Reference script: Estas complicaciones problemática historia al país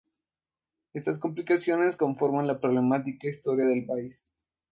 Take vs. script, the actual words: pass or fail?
fail